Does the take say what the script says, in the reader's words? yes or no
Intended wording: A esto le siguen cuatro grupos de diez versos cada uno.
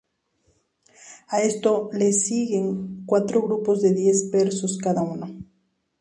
yes